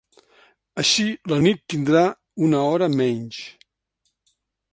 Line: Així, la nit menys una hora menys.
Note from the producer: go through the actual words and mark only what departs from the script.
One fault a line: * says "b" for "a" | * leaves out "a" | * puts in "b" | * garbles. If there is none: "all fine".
* says "tindrà" for "menys"